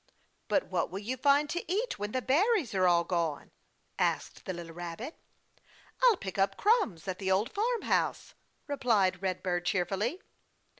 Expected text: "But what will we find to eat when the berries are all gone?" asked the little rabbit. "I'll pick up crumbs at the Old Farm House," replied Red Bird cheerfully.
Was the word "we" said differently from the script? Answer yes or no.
yes